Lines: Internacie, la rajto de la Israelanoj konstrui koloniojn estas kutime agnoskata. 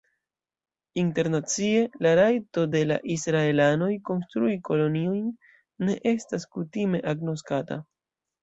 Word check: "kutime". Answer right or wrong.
right